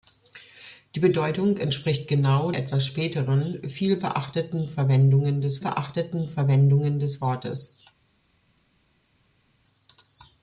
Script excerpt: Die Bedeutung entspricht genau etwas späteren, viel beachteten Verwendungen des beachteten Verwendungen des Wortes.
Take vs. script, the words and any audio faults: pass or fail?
pass